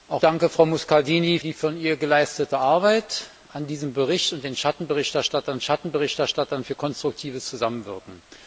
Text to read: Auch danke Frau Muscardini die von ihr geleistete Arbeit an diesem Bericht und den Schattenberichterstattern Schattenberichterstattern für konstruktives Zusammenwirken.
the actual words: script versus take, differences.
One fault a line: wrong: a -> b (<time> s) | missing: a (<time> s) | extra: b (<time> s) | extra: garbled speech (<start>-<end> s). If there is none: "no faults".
no faults